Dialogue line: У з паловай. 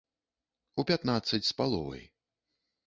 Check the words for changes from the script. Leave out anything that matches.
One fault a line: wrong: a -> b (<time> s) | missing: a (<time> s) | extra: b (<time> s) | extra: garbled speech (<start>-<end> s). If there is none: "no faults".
extra: пятнаццаць (0.9 s)